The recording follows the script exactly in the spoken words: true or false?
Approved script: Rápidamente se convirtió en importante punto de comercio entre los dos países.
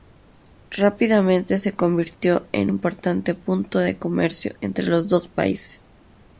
true